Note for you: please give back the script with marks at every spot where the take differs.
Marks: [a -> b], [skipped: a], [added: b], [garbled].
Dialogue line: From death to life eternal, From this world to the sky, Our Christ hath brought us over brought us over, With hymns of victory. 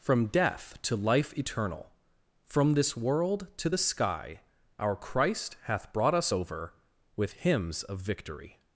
From death to life eternal, From this world to the sky, Our Christ hath brought us over [skipped: brought us over,] With hymns of victory.